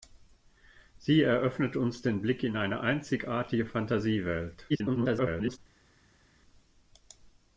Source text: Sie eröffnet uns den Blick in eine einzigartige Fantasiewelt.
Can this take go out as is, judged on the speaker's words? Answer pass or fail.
fail